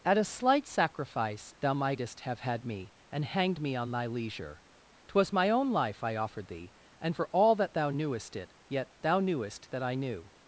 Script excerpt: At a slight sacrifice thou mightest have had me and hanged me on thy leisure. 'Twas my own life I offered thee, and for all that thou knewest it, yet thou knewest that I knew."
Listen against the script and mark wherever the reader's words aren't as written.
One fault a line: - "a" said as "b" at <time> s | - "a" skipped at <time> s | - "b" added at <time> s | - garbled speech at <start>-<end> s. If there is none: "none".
none